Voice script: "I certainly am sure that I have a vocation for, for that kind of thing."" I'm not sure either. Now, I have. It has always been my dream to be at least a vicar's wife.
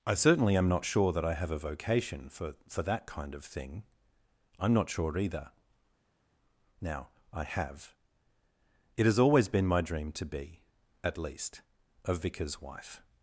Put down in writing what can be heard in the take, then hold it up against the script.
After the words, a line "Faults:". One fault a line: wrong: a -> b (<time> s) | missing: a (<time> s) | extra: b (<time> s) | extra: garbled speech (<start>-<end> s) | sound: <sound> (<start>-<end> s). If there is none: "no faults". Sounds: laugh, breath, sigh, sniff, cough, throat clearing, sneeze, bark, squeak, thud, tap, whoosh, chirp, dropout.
"I certainly am not sure that I have a vocation for, for that kind of thing."" I'm not sure either. Now, I have. It has always been my dream to be at least a vicar's wife.
Faults:
extra: not (0.7 s)